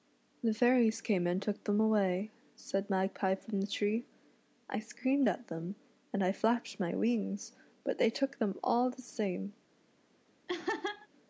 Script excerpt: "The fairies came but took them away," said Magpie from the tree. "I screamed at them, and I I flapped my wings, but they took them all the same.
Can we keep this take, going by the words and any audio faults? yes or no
no